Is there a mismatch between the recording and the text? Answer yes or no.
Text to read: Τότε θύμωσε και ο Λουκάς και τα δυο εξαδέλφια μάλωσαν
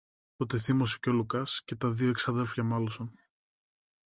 no